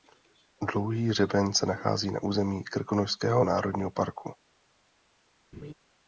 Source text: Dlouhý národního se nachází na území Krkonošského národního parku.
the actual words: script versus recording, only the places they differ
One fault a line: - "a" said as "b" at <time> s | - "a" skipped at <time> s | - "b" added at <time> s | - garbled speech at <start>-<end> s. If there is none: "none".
- "národního" said as "hřeben" at 1.1 s